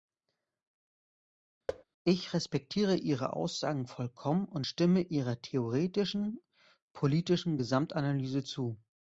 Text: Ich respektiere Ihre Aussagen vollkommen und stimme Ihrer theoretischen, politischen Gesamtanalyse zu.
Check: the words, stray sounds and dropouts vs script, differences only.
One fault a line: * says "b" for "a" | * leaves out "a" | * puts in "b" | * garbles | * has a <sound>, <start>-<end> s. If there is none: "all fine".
* has a thud, 1.7-1.8 s